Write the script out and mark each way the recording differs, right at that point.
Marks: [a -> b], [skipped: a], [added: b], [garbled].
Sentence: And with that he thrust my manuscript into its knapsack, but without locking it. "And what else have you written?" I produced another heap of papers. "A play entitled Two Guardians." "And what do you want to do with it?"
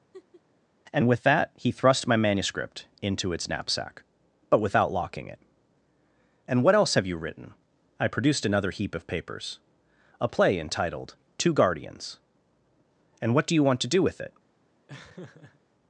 And with that he thrust my manuscript into its knapsack, but without locking it. "And what else have you written?" I produced another heap of papers. "A play entitled Two Guardians." "And what do you want to do with it?"